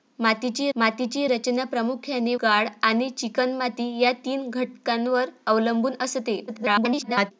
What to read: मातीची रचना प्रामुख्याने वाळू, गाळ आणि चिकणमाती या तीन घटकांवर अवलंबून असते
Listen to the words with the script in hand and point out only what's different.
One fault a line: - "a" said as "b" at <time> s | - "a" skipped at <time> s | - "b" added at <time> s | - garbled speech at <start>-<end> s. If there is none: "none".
- "मातीची" added at 0.8 s
- "वाळू" skipped at 2.3 s
- garbled speech at 6.5-7.3 s